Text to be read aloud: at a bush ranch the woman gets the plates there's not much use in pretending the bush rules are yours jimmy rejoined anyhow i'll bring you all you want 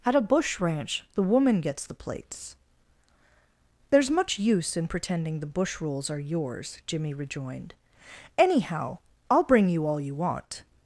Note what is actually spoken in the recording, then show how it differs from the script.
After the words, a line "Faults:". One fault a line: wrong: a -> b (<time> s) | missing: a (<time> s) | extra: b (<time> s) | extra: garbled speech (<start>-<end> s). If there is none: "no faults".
at a bush ranch the woman gets the plates there's much use in pretending the bush rules are yours jimmy rejoined anyhow i'll bring you all you want
Faults:
missing: not (4.1 s)